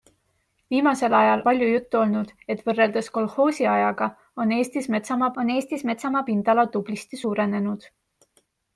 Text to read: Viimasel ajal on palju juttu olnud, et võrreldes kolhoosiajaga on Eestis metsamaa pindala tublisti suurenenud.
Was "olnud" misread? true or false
false